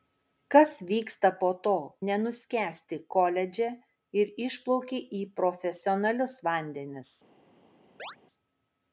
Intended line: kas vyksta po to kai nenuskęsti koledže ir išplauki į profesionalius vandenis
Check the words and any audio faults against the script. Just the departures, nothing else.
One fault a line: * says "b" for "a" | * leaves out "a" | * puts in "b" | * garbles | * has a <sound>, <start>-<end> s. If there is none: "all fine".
* leaves out "kai"
* has a chirp, 8.0-8.2 s